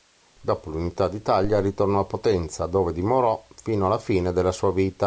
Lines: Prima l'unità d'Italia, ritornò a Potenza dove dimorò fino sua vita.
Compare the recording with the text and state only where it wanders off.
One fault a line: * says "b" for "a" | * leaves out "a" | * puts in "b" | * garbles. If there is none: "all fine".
* says "Dopo" for "Prima"
* puts in "alla fine della"